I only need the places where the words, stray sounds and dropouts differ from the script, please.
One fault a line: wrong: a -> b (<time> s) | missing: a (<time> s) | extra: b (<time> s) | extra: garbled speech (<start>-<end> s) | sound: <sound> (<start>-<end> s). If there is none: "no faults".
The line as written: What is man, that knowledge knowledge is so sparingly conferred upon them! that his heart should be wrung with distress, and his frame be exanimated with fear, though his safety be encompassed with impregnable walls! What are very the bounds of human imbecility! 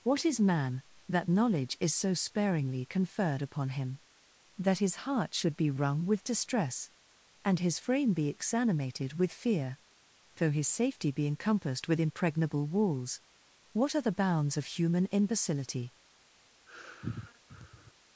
missing: knowledge (1.8 s)
wrong: them -> him (3.7 s)
missing: very (14.0 s)
sound: sigh (16.7-17.9 s)